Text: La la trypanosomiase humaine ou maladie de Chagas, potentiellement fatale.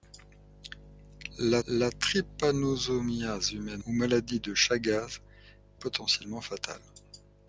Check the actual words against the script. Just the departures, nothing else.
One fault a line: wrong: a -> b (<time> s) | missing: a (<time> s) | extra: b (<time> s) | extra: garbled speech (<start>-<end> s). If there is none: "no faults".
no faults